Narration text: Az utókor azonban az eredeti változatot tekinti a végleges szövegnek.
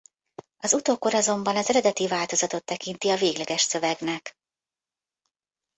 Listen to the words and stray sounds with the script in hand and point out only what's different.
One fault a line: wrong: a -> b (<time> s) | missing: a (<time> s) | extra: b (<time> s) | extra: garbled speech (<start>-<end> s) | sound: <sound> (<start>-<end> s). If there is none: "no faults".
no faults